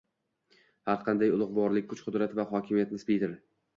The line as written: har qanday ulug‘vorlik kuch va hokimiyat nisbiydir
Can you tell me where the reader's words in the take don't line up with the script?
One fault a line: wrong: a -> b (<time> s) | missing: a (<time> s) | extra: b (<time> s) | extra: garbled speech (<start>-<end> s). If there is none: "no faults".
extra: qudrat (2.1 s)